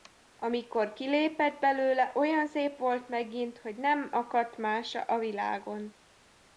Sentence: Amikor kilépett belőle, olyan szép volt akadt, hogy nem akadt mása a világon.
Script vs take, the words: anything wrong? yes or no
yes